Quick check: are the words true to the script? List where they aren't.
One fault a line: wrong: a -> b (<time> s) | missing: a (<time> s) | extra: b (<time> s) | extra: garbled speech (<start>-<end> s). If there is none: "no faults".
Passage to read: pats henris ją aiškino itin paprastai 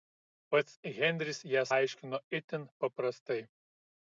no faults